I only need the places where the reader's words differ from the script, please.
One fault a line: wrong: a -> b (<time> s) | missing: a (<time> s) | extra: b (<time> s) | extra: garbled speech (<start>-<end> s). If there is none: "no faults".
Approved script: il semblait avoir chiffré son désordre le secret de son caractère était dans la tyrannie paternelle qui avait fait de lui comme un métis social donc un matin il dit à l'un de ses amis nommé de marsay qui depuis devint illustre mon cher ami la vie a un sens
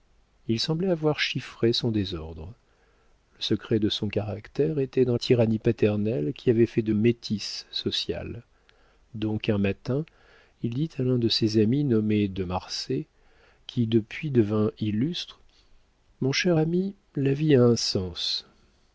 missing: la (5.2 s)
missing: lui comme un (6.9 s)